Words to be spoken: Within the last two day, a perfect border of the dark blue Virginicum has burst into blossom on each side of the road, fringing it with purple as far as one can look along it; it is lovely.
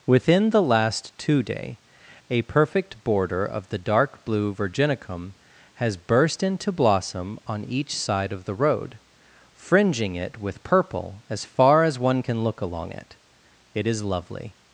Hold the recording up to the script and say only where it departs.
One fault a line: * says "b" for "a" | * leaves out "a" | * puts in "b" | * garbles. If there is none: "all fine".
all fine